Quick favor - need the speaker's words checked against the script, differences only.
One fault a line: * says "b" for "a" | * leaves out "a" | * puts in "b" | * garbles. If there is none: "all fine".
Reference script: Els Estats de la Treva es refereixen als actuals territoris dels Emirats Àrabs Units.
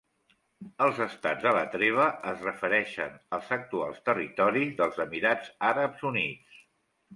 all fine